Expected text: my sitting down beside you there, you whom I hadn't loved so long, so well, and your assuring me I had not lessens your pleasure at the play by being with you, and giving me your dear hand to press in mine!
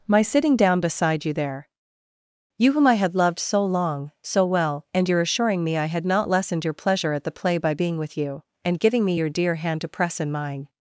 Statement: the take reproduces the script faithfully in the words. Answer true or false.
false